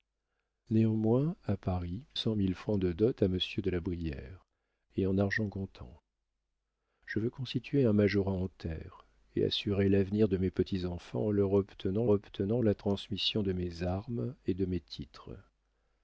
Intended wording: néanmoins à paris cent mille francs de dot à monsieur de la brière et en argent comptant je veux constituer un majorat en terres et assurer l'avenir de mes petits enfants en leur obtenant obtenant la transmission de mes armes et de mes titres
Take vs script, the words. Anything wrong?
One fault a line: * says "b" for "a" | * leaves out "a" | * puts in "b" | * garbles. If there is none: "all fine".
all fine